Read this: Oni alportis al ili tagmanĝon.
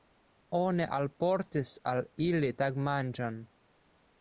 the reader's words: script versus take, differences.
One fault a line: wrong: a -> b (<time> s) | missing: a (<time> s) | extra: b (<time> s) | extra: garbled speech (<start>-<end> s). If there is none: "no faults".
no faults